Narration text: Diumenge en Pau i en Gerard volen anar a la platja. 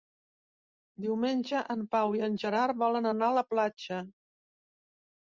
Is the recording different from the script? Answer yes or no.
no